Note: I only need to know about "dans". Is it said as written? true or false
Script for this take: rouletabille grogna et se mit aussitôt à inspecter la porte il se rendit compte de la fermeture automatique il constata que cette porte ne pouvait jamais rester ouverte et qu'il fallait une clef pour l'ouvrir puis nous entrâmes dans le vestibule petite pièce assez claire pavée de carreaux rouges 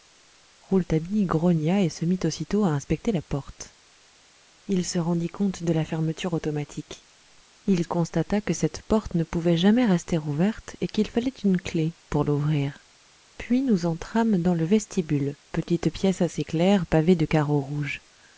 true